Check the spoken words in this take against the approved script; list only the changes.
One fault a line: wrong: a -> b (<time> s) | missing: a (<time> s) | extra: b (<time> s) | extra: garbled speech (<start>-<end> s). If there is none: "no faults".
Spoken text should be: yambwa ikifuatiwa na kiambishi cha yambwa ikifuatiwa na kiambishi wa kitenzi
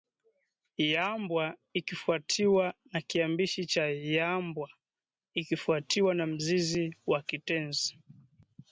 wrong: kiambishi -> mzizi (6.3 s)